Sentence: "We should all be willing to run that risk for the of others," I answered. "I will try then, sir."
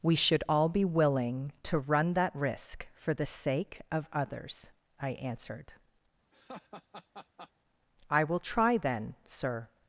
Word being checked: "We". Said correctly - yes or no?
yes